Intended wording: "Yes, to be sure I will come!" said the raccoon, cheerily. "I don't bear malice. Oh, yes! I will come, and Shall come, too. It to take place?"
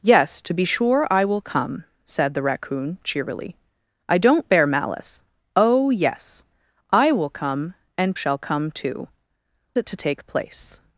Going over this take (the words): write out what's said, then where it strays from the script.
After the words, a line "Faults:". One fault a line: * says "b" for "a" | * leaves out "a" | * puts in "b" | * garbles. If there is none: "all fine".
"Yes, to be sure I will come!" said the raccoon, cheerily. "I don't bear malice. Oh, yes! I will come, and Shall come, too. It to take place?"
Faults:
all fine